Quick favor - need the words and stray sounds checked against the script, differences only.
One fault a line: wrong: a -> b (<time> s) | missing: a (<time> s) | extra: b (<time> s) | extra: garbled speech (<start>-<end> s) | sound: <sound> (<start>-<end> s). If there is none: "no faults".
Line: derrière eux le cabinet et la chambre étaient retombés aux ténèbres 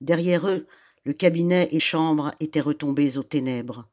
missing: la (1.8 s)